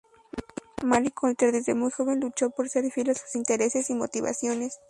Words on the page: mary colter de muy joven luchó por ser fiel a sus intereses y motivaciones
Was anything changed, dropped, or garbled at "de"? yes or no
yes